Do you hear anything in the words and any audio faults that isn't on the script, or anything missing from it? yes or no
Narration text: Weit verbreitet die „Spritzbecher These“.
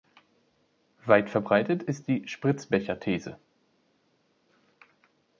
yes